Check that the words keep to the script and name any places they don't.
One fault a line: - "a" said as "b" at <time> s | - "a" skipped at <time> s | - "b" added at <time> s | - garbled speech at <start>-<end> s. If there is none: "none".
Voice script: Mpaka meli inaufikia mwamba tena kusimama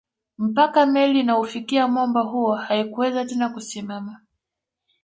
- "huo haikuweza" added at 2.2 s